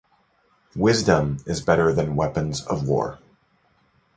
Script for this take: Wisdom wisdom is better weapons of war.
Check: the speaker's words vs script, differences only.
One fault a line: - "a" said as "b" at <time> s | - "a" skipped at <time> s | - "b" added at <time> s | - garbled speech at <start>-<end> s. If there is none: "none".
- "wisdom" skipped at 1.4 s
- "than" added at 1.9 s